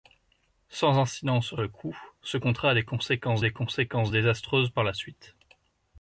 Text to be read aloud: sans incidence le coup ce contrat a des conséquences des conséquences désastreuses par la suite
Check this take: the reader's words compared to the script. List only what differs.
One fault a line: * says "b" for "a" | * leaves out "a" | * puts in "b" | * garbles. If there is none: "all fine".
all fine